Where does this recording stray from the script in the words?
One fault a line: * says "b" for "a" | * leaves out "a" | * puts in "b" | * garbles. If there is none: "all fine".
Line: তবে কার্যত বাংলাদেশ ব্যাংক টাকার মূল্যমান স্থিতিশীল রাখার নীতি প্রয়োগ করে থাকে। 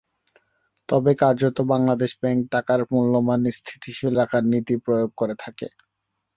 all fine